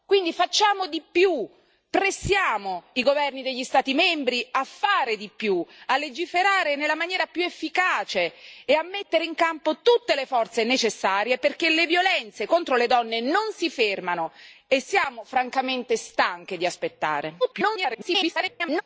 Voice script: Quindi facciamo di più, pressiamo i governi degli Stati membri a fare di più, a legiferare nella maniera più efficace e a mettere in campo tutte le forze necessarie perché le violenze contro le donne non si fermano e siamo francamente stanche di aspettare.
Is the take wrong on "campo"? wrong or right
right